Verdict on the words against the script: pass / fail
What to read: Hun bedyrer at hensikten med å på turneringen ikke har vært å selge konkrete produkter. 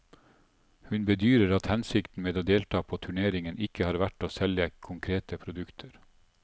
fail